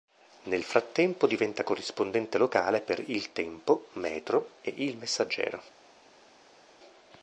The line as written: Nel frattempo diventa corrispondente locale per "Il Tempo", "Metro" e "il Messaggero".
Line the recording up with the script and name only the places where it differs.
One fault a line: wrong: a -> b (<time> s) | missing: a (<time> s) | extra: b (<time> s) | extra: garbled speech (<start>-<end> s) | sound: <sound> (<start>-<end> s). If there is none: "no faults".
no faults